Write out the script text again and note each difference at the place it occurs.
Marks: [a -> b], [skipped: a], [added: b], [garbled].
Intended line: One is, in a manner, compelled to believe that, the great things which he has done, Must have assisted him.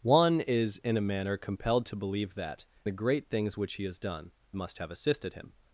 One is, in a manner, compelled to believe that, the great things which he has done, Must have assisted him.